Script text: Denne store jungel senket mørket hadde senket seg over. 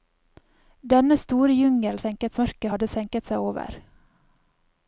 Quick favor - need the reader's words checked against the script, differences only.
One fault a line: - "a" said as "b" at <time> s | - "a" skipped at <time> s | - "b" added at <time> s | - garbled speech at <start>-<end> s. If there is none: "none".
none